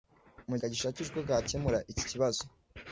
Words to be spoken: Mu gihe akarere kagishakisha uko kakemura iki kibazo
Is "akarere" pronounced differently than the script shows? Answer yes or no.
yes